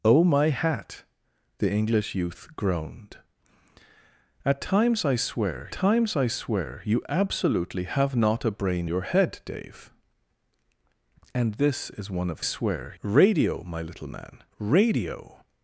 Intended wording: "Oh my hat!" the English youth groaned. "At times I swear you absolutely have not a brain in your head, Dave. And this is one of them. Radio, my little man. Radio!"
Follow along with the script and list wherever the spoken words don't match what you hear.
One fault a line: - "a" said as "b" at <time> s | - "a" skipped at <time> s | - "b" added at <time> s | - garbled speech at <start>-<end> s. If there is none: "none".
- "times I swear" added at 5.7 s
- "in" skipped at 8.9 s
- "them" said as "swear" at 12.4 s